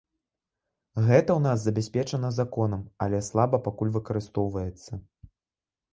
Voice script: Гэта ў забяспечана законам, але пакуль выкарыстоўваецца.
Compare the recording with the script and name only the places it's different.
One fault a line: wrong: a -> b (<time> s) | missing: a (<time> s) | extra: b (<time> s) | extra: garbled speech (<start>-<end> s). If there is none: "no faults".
extra: нас (1.5 s)
extra: слаба (3.3 s)